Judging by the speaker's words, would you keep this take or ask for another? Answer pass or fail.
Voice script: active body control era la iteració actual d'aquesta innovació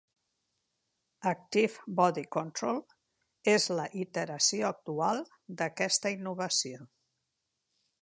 fail